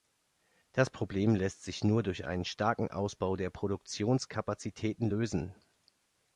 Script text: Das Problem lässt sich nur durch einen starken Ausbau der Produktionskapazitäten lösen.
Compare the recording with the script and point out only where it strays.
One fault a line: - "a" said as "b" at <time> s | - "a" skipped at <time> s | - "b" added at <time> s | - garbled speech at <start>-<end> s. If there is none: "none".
none